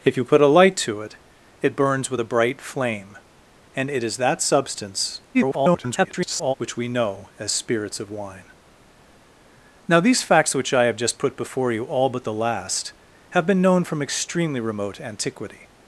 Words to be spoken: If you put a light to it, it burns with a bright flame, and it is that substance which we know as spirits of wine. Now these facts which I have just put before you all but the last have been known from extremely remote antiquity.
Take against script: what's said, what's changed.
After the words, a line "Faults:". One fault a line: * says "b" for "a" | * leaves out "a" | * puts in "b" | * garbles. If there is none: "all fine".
If you put a light to it, it burns with a bright flame, and it is that substance [garbled] which we know as spirits of wine. Now these facts which I have just put before you all but the last have been known from extremely remote antiquity.
Faults:
* garbles